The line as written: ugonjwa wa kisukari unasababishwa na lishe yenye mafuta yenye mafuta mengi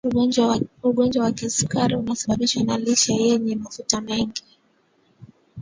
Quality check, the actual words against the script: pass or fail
fail